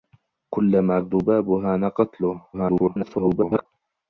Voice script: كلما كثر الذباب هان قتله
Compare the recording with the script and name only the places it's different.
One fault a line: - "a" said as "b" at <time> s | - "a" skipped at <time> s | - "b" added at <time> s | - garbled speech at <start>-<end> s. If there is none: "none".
- "كثر" skipped at 1.0 s
- garbled speech at 2.5-3.7 s